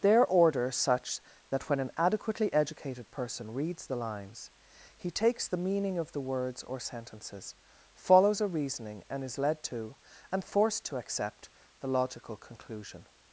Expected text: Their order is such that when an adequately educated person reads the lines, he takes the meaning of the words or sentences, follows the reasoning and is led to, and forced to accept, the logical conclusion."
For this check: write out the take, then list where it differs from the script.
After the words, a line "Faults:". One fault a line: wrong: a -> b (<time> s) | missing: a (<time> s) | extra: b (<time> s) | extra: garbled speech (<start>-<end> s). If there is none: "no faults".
Their order such that when an adequately educated person reads the lines, he takes the meaning of the words or sentences, follows a reasoning and is led to, and forced to accept, the logical conclusion."
Faults:
missing: is (0.7 s)
wrong: the -> a (8.4 s)